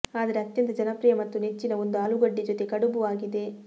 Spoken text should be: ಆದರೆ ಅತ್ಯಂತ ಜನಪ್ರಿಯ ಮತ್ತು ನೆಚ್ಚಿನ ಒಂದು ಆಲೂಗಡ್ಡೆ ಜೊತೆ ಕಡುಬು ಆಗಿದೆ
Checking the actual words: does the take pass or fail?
pass